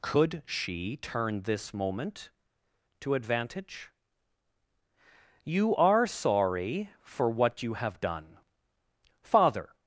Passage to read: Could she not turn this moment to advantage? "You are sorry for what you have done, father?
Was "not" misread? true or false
true